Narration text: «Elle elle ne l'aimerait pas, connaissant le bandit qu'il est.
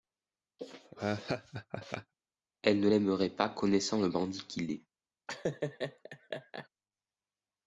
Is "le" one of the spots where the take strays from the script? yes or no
no